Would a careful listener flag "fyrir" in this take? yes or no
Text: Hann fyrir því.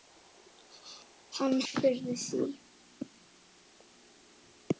no